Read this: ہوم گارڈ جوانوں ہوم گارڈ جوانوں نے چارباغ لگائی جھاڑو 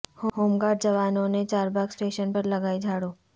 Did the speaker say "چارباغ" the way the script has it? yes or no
no